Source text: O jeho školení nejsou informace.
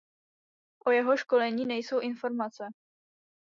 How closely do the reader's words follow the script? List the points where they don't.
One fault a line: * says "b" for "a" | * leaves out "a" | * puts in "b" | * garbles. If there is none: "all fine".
all fine